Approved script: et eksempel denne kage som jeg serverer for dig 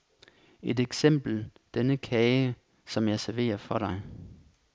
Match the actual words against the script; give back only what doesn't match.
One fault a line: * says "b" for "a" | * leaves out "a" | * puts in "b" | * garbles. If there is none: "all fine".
all fine